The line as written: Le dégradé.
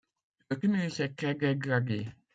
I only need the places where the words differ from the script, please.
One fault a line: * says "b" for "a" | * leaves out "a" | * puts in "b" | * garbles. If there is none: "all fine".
* puts in "tumulus est très"